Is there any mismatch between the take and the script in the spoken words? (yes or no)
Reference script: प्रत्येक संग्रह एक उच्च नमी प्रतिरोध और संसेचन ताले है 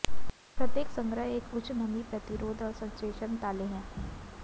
no